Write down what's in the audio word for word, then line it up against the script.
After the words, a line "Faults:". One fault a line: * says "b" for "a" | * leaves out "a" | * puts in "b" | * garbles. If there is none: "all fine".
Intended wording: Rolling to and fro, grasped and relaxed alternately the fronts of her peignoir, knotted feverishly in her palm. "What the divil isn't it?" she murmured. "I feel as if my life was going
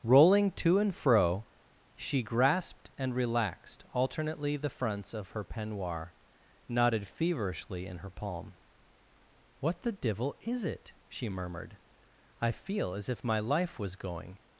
Rolling to and fro, she grasped and relaxed alternately the fronts of her peignoir, knotted feverishly in her palm. "What the divil is it?" she murmured. "I feel as if my life was going
Faults:
* puts in "she"
* says "is" for "isn't"